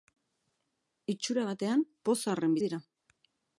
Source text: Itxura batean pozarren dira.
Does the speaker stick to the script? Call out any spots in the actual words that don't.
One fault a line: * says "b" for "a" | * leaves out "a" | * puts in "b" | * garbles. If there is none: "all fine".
all fine